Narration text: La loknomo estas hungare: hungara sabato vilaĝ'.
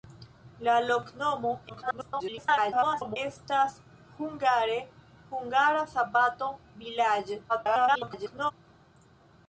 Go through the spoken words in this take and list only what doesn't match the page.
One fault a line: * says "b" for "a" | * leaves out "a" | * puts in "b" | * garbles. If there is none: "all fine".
* garbles
* garbles